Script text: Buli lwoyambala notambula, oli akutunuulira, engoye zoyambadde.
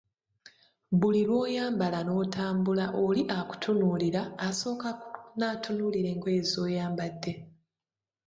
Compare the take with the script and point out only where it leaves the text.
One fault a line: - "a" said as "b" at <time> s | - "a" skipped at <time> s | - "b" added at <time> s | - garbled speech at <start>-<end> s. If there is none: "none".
- "asooka natunuulira" added at 4.5 s